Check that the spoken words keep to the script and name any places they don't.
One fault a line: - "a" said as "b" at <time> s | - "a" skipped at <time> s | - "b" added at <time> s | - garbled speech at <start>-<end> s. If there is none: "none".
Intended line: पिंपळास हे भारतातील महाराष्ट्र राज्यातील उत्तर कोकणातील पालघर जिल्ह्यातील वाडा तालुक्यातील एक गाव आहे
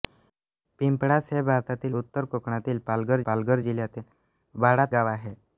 - "महाराष्ट्र राज्यातील" skipped at 1.9 s
- "पालघर" added at 3.3 s
- "तालुक्यातील एक" skipped at 4.8 s